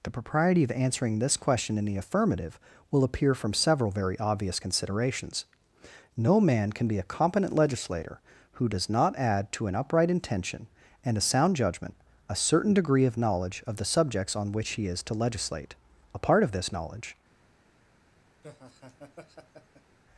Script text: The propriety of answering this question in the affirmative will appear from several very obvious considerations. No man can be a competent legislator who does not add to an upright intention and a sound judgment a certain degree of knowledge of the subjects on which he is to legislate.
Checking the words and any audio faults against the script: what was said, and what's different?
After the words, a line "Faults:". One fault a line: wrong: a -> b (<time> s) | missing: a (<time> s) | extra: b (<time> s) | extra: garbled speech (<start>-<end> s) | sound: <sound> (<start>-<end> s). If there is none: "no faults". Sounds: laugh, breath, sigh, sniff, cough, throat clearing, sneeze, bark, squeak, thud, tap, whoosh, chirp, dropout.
The propriety of answering this question in the affirmative will appear from several very obvious considerations. No man can be a competent legislator who does not add to an upright intention and a sound judgment a certain degree of knowledge of the subjects on which he is to legislate. A part of this knowledge
Faults:
extra: A part of this knowledge (16.1 s)
sound: laugh (18.4-20.0 s)